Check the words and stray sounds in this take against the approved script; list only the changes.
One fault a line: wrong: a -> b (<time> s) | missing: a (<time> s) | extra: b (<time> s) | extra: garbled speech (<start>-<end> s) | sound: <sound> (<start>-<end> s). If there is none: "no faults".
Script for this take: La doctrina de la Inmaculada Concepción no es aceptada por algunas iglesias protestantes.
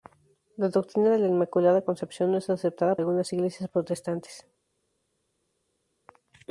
missing: por (3.0 s)